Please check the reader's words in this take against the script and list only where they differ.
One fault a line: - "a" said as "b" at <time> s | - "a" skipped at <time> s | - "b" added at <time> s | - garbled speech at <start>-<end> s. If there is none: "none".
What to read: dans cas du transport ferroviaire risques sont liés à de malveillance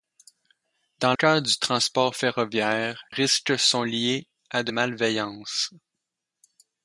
none